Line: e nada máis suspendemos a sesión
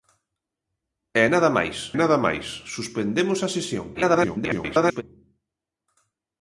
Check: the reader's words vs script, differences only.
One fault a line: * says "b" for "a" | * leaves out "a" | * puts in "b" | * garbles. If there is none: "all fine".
* puts in "nada máis"
* garbles